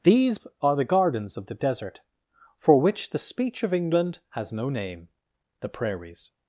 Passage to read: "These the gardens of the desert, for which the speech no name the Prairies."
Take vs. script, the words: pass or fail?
fail